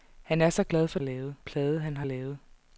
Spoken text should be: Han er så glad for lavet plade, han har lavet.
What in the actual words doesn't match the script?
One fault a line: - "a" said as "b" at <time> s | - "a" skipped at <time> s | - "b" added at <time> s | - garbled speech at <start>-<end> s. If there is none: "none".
none